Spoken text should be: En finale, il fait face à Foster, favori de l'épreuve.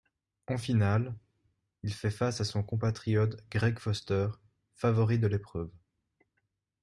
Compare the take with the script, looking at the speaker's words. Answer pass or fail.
fail